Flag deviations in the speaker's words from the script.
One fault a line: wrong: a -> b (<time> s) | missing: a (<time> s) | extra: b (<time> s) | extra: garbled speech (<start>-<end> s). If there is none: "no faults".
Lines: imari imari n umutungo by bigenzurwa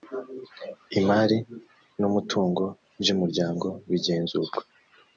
missing: imari (1.4 s)
extra: umuryango (3.1 s)